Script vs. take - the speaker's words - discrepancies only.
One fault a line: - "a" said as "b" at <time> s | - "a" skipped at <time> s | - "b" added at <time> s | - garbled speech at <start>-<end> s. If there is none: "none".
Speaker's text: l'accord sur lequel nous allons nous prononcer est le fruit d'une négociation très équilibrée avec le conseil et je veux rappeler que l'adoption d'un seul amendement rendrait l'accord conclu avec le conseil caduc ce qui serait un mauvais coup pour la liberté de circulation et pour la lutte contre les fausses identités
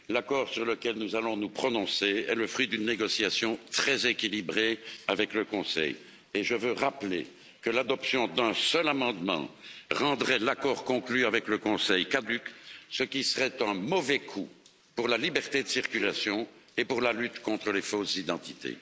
none